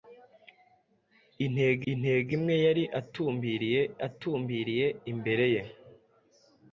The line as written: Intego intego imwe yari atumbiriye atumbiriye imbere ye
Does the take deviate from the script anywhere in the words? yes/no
no